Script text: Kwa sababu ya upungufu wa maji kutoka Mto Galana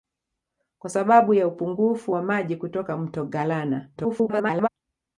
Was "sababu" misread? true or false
false